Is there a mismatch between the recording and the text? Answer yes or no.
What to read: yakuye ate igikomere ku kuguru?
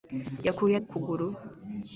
yes